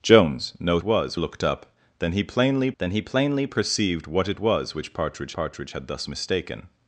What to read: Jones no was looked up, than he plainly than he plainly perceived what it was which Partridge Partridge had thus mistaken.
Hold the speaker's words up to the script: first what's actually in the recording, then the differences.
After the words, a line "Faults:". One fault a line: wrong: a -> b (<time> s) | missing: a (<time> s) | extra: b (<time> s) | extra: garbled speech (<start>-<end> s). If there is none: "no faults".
Jones no was looked up, than he plainly than he plainly perceived what it was which Partridge Partridge had thus mistaken.
Faults:
no faults